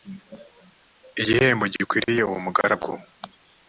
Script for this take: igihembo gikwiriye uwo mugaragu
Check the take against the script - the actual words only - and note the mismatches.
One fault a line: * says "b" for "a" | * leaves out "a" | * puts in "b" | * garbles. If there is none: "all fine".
all fine